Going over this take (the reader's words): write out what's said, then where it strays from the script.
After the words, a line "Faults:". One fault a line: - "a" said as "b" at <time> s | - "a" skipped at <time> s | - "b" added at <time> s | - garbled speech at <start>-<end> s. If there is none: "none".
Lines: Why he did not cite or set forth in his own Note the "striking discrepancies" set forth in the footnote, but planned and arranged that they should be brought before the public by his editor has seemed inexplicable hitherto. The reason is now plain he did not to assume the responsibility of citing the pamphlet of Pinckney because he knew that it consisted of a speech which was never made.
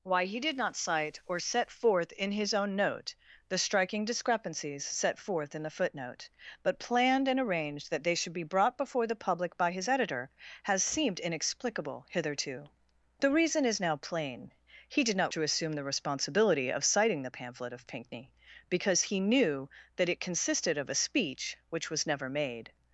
Why he did not cite or set forth in his own Note the "striking discrepancies" set forth in the footnote, but planned and arranged that they should be brought before the public by his editor has seemed inexplicable hitherto. The reason is now plain he did not to assume the responsibility of citing the pamphlet of Pinckney because he knew that it consisted of a speech which was never made.
Faults:
none